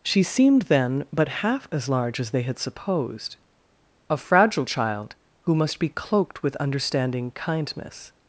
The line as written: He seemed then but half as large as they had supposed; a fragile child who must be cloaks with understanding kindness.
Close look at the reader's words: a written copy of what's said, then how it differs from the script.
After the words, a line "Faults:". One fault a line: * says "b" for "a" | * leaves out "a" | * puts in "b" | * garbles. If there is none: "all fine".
She seemed then but half as large as they had supposed; a fragile child who must be cloaked with understanding kindness.
Faults:
* says "She" for "He"
* says "cloaked" for "cloaks"